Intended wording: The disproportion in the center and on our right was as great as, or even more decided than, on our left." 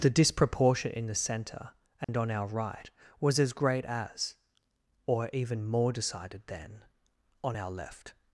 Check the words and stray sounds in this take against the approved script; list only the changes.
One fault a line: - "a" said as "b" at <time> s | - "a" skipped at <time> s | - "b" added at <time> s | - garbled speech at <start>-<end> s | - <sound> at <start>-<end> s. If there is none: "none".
- dropout at 2.0-2.1 s